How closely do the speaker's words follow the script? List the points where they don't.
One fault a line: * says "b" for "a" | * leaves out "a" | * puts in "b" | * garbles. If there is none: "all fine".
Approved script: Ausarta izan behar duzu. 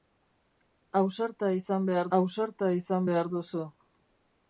* puts in "ausarta izan behar"